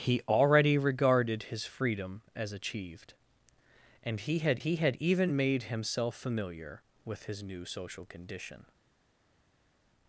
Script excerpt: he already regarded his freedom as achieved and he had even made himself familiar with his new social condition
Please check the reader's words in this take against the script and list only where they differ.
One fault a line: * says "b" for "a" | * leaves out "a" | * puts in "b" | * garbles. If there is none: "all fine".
* puts in "he had"